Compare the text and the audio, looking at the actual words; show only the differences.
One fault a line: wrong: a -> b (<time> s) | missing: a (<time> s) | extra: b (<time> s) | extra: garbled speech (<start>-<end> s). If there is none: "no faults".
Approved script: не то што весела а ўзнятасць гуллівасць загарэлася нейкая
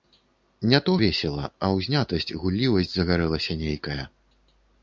missing: што (0.9 s)